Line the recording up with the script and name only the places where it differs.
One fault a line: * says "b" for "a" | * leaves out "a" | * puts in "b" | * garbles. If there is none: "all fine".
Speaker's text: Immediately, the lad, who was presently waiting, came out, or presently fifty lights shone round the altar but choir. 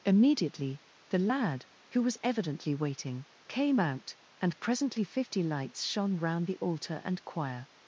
* says "evidently" for "presently"
* says "and" for "or"
* says "and" for "but"